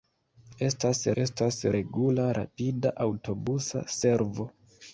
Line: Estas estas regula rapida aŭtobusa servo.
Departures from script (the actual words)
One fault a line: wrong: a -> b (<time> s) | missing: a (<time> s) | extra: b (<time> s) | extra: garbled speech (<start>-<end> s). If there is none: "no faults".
no faults